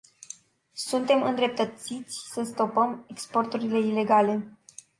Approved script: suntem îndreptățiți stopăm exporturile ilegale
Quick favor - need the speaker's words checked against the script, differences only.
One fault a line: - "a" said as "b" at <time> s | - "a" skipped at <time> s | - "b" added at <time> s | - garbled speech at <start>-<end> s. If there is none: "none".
- "să" added at 2.3 s